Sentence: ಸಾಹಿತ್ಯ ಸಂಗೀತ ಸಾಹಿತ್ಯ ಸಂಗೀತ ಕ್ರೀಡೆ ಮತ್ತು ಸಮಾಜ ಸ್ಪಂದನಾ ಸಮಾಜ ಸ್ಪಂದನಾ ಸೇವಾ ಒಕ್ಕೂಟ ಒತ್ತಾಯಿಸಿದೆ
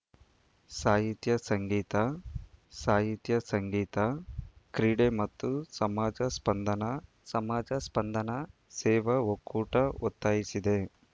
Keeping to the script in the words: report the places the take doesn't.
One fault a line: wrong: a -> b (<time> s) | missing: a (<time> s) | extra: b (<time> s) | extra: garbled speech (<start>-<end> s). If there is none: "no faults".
no faults